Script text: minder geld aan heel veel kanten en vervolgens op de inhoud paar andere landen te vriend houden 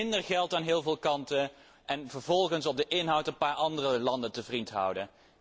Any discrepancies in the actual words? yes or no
yes